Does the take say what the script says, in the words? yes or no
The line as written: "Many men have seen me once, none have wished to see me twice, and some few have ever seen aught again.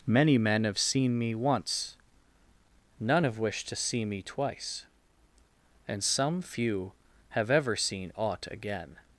yes